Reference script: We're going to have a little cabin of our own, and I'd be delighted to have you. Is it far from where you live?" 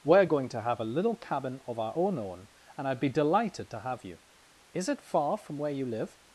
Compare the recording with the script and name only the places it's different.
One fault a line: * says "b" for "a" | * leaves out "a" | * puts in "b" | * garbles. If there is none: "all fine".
* puts in "own"